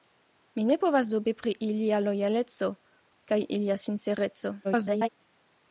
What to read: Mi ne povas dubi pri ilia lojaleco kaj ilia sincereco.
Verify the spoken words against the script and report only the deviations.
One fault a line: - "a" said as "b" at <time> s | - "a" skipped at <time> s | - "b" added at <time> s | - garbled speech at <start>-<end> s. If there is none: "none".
- garbled speech at 4.6-5.1 s